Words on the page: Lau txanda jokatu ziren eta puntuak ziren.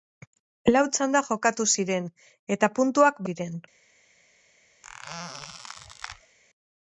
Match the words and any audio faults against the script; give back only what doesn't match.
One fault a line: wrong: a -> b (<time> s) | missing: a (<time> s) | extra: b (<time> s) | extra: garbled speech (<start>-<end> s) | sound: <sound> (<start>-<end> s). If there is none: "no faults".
sound: squeak (4.8-6.4 s)